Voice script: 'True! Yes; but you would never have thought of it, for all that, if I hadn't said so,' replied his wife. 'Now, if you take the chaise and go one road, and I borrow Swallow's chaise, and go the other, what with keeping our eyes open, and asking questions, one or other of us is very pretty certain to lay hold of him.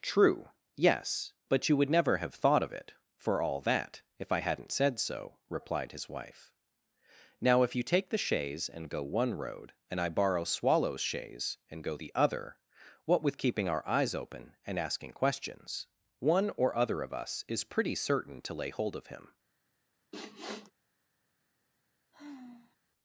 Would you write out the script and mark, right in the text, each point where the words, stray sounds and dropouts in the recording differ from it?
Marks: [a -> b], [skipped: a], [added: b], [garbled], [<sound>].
'True! Yes; but you would never have thought of it, for all that, if I hadn't said so,' replied his wife. 'Now, if you take the chaise and go one road, and I borrow Swallow's chaise, and go the other, what with keeping our eyes open, and asking questions, one or other of us is [skipped: very] pretty certain to lay hold of him. [sniff] [sigh]